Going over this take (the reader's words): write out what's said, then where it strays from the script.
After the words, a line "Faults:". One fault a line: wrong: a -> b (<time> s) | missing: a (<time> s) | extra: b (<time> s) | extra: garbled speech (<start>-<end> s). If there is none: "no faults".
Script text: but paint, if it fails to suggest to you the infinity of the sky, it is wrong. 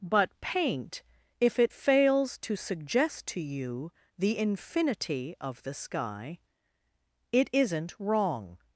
but paint, if it fails to suggest to you the infinity of the sky, it isn't wrong.
Faults:
wrong: is -> isn't (7.5 s)